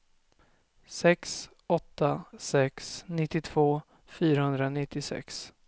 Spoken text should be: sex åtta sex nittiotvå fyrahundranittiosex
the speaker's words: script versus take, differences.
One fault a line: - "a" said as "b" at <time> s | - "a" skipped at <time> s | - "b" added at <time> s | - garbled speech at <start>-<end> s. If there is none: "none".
none